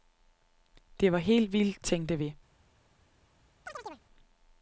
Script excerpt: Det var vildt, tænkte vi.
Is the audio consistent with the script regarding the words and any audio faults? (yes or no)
no